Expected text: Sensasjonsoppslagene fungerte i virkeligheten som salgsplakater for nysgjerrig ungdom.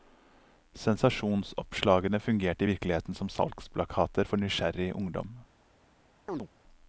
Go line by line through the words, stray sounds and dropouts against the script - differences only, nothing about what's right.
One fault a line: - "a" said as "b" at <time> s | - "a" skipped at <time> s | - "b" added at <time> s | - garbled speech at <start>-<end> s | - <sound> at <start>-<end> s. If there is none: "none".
- chirp at 6.3-6.5 s